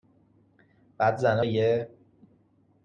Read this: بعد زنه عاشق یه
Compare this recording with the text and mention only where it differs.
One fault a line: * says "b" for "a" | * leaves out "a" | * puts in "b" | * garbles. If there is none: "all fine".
* leaves out "عاشق"